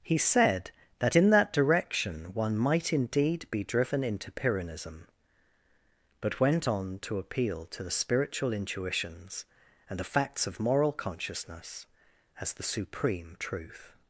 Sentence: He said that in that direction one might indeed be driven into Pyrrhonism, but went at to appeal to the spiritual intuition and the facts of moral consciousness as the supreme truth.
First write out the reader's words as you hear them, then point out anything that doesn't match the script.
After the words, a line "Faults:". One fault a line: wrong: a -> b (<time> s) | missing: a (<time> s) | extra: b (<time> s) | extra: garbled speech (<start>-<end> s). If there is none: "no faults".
He said that in that direction one might indeed be driven into Pyrrhonism, but went on to appeal to the spiritual intuitions and the facts of moral consciousness as the supreme truth.
Faults:
wrong: at -> on (6.7 s)
wrong: intuition -> intuitions (8.5 s)